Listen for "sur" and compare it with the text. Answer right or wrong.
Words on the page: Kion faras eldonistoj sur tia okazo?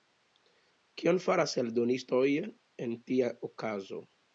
wrong